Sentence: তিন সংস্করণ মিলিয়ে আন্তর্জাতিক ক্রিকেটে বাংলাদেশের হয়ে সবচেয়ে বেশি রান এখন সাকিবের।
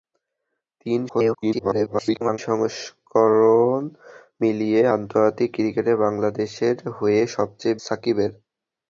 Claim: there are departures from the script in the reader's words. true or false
true